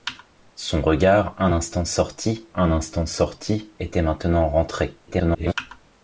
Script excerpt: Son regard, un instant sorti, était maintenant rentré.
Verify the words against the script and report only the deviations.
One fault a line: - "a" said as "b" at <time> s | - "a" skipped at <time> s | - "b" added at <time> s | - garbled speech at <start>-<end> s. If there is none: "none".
- "un instant sorti" added at 2.5 s
- garbled speech at 5.1-5.5 s